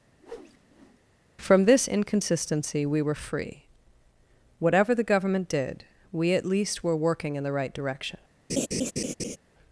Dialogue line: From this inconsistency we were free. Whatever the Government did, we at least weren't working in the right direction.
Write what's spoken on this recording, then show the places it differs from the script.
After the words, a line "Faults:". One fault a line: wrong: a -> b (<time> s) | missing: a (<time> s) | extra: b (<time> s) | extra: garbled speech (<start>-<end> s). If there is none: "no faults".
From this inconsistency we were free. Whatever the Government did, we at least were working in the right direction.
Faults:
wrong: weren't -> were (6.8 s)